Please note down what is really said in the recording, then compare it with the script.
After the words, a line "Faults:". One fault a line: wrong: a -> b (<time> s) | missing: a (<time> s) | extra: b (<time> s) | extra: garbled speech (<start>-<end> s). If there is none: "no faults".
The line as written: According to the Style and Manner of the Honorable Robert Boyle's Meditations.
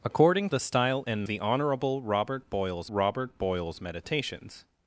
According the Style and The Honorable Robert Boyle's Robert Boyle's Meditations.
Faults:
missing: to (0.5 s)
wrong: Manner of the Honorable -> The Honorable Robert Boyle's (1.3 s)